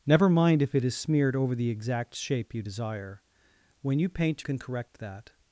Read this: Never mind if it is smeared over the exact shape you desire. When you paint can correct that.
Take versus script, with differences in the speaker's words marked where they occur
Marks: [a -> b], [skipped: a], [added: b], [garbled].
Never mind if it is smeared over the exact shape you desire. When you paint can correct that.